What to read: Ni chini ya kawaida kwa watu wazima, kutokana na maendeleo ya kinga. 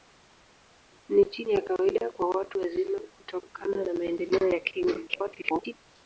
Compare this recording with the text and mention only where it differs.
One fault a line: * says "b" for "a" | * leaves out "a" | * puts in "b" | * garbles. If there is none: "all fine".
* garbles